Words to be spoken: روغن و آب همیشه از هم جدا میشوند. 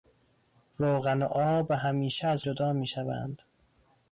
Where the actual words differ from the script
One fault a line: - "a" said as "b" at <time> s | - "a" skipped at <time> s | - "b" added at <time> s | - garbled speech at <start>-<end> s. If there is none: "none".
- "هم" skipped at 2.5 s